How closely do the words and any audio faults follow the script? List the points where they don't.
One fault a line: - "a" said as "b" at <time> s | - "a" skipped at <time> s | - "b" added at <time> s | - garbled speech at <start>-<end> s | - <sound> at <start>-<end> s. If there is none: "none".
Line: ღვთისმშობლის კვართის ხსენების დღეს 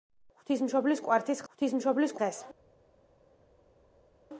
- "ხსენების" said as "ღვთისმშობლის" at 1.5 s